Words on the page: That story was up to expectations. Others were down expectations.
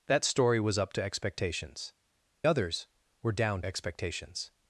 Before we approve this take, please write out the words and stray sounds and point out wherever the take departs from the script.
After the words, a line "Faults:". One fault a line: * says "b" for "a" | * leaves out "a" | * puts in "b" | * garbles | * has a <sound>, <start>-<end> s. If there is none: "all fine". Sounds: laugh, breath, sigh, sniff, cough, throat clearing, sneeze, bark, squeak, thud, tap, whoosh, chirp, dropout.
That story was up to expectations. Others were down expectations.
Faults:
all fine